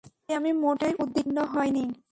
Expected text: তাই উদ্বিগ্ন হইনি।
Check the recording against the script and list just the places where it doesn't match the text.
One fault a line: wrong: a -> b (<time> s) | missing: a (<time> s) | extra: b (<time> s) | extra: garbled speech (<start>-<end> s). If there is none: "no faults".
extra: আমি মোটেই (0.3 s)